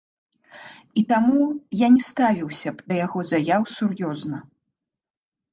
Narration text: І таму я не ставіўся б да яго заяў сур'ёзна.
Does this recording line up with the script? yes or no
yes